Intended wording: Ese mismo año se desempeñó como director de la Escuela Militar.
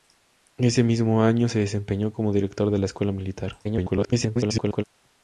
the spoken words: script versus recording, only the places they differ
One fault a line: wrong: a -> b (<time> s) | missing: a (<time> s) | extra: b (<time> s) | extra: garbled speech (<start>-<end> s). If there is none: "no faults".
extra: garbled speech (3.6-4.8 s)